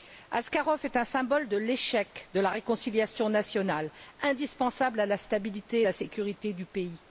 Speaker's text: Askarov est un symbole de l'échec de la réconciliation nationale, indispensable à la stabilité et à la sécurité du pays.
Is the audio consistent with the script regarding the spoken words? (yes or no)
yes